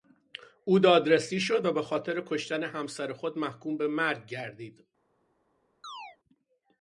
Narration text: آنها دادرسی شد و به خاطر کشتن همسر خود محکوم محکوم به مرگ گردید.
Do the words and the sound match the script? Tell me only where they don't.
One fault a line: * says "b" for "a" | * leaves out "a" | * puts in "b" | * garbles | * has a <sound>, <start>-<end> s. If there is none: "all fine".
* says "او" for "آنها"
* leaves out "محکوم"
* has a chirp, 5.8-6.2 s